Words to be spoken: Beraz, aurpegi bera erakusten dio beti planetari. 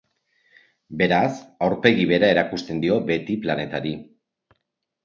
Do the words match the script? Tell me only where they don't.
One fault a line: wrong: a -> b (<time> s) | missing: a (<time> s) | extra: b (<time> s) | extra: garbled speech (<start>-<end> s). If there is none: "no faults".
no faults